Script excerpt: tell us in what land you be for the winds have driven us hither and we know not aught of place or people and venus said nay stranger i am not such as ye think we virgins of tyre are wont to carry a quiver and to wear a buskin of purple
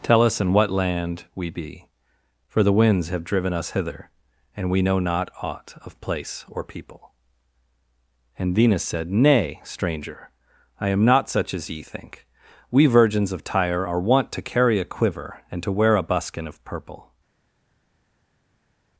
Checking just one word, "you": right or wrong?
wrong